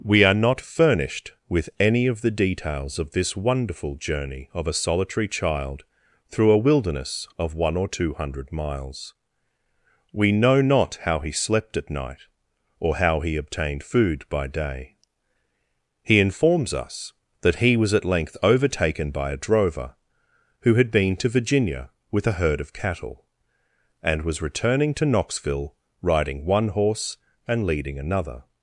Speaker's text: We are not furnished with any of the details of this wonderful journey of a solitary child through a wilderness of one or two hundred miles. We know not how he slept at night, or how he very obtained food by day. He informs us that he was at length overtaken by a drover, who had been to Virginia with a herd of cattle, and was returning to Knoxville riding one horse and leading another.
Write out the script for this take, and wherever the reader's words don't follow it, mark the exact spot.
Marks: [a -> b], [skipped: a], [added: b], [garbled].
We are not furnished with any of the details of this wonderful journey of a solitary child through a wilderness of one or two hundred miles. We know not how he slept at night, or how he [skipped: very] obtained food by day. He informs us that he was at length overtaken by a drover, who had been to Virginia with a herd of cattle, and was returning to Knoxville riding one horse and leading another.